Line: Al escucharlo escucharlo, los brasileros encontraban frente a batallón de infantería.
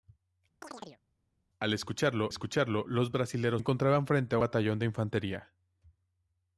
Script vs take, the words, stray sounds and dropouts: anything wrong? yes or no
yes